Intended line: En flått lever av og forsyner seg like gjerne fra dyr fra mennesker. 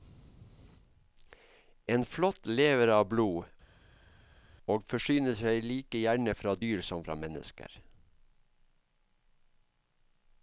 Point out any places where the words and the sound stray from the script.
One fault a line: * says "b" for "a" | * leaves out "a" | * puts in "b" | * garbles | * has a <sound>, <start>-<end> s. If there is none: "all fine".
* puts in "blod"
* puts in "som"